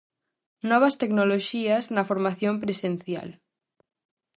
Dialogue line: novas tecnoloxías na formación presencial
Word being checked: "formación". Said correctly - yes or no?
yes